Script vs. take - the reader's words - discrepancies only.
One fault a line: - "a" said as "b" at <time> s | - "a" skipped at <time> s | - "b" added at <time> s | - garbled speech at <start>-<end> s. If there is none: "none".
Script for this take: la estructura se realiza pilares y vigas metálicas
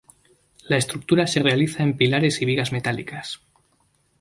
- "en" added at 1.8 s